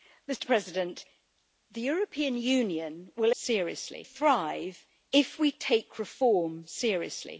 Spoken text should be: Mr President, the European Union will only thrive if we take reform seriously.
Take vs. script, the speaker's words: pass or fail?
fail